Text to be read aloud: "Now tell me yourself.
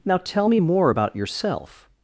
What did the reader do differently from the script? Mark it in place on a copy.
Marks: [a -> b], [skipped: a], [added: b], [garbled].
"Now tell me [added: more about] yourself.